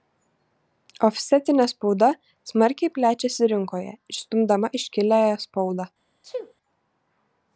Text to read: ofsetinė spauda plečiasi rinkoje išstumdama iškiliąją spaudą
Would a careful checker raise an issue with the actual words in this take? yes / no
yes